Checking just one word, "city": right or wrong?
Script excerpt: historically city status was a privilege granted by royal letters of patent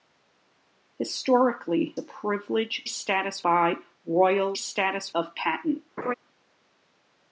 wrong